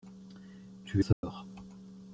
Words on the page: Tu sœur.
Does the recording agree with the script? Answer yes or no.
yes